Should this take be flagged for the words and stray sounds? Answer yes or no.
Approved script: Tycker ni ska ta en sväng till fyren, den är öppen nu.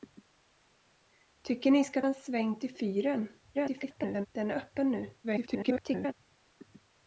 yes